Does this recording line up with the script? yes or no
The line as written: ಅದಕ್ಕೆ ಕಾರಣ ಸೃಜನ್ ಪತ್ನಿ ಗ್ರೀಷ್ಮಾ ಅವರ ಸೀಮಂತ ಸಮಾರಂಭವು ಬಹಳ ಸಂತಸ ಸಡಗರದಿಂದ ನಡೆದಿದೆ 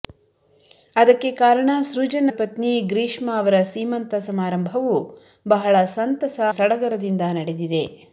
yes